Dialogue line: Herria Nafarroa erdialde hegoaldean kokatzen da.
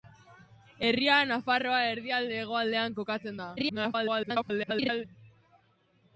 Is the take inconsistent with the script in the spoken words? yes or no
yes